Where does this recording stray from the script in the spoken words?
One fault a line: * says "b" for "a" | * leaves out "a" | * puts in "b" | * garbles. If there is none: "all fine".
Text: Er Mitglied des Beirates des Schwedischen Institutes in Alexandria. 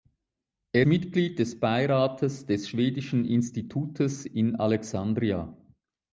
all fine